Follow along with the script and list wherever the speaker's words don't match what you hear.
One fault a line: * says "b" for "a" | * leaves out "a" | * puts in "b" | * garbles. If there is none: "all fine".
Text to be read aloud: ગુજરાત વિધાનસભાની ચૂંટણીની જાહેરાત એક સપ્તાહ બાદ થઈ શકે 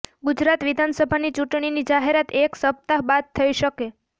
all fine